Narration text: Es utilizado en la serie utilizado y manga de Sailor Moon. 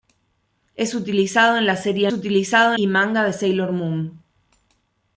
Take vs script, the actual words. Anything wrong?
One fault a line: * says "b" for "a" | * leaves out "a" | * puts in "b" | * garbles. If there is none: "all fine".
all fine